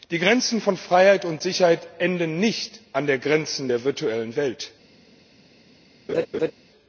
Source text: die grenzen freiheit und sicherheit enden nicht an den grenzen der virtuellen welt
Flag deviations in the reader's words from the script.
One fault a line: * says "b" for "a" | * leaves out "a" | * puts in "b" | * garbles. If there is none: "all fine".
* puts in "von"